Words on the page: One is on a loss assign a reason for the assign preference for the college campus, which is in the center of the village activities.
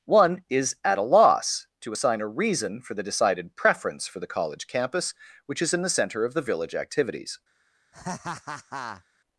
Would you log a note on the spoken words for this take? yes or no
yes